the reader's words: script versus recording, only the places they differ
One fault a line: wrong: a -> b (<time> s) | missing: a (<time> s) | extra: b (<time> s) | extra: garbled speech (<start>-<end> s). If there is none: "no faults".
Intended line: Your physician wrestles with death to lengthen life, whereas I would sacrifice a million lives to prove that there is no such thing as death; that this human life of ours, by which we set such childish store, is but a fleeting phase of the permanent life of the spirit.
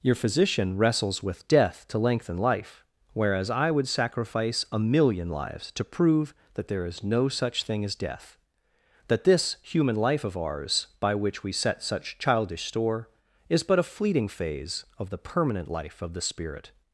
no faults